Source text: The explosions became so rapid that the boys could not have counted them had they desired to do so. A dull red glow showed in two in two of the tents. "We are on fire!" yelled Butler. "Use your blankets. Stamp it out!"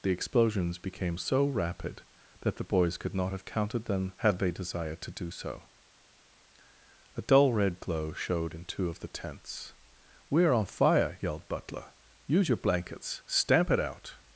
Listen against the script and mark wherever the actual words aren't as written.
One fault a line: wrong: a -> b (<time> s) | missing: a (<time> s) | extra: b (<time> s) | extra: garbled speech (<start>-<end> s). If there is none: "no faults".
missing: in two (8.9 s)